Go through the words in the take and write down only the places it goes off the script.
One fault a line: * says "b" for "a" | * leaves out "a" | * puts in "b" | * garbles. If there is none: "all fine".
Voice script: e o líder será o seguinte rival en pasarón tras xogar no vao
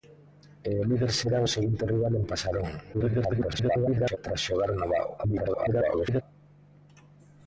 * garbles
* garbles